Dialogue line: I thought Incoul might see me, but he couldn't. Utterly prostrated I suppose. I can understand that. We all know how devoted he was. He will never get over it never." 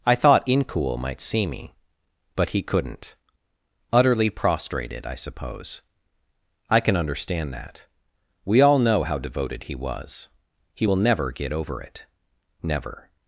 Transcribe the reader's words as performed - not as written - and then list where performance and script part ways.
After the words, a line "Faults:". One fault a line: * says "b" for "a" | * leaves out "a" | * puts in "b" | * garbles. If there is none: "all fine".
I thought Incoul might see me, but he couldn't. Utterly prostrated I suppose. I can understand that. We all know how devoted he was. He will never get over it never."
Faults:
all fine